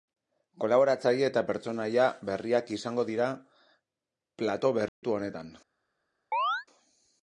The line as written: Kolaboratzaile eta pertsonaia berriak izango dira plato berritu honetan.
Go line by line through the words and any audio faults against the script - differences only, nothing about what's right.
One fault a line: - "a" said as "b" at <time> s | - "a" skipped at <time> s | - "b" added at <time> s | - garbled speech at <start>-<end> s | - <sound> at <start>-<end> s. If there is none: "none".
- dropout at 4.9-5.0 s
- chirp at 6.3-6.7 s